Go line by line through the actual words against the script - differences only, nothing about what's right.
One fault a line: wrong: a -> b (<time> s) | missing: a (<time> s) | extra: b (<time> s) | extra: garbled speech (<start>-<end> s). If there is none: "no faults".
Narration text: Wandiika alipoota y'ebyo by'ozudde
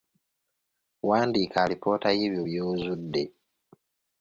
no faults